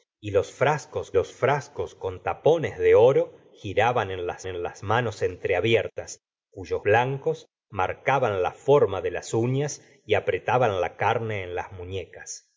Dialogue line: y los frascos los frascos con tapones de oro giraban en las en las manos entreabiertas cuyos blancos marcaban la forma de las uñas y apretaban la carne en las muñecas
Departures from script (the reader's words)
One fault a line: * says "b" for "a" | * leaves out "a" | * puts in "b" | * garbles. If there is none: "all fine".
all fine